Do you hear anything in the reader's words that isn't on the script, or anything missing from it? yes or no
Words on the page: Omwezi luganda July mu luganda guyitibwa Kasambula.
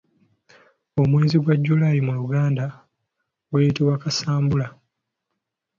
yes